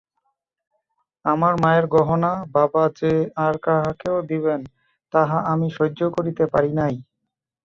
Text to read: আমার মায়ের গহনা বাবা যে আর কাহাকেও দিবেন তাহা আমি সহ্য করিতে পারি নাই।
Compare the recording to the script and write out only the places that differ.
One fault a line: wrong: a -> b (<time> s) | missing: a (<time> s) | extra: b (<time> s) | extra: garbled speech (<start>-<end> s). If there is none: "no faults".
no faults